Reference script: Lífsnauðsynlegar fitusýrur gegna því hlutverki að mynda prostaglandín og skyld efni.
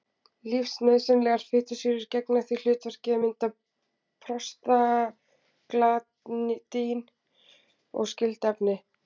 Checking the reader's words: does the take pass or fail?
pass